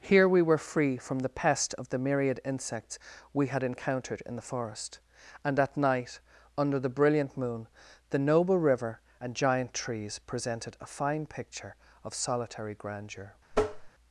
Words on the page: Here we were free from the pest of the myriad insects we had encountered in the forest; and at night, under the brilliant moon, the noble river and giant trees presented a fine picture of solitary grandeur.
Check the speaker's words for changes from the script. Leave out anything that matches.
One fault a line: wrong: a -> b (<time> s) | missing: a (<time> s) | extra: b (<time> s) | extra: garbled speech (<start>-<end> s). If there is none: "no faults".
no faults